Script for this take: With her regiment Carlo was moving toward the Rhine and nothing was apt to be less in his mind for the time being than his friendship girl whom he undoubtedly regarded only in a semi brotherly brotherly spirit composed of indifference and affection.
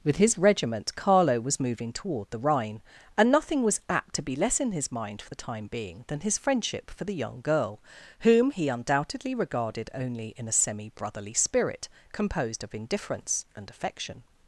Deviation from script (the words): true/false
true